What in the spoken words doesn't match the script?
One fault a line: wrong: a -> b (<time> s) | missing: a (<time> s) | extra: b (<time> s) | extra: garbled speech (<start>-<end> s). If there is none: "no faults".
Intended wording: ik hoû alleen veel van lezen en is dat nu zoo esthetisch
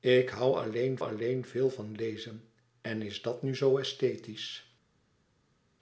extra: alleen (1.0 s)